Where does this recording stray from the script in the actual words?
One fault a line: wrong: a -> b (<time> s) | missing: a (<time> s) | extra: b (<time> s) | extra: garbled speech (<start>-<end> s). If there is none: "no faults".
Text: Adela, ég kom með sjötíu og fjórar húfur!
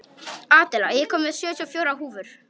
no faults